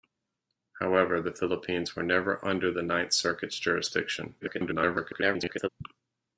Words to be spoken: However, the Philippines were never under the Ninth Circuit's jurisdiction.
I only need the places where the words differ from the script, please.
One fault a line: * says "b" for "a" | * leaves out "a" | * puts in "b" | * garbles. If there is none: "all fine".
* garbles